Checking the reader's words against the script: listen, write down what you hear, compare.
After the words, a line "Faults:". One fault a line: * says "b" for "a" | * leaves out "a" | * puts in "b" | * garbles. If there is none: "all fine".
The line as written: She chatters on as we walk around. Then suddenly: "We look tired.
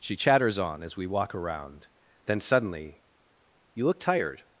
She chatters on as we walk around. Then suddenly: "You look tired.
Faults:
* says "You" for "We"